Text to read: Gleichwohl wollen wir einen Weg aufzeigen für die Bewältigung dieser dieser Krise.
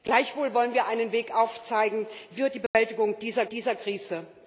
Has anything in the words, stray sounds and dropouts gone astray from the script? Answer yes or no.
yes